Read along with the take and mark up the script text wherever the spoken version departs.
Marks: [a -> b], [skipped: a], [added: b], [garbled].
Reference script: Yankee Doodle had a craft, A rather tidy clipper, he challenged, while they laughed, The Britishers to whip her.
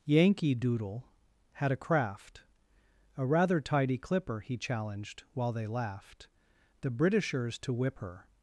Yankee Doodle had a craft, A rather tidy clipper, he challenged, while they laughed, The Britishers to whip her.